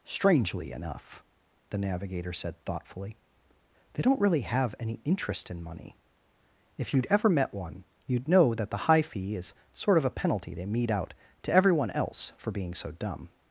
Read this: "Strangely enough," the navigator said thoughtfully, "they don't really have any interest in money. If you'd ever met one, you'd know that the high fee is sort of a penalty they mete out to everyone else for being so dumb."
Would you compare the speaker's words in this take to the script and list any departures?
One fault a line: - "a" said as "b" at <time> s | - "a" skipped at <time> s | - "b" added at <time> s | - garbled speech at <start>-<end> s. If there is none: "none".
none